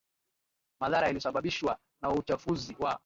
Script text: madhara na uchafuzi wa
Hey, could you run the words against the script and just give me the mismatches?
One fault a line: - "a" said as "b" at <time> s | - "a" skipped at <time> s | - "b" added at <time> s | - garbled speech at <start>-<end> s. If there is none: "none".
- "yaliyosababishwa" added at 1.1 s